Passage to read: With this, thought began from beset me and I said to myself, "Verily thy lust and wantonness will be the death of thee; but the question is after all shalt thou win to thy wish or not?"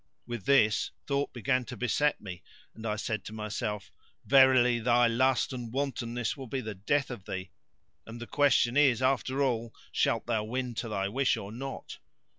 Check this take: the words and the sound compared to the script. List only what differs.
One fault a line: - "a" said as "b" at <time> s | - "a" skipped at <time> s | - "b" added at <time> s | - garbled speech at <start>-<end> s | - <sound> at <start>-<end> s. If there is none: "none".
- "from" said as "to" at 1.6 s
- "but" said as "and" at 8.0 s